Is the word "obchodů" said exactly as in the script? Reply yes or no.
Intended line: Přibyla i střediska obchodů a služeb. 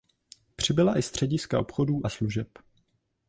yes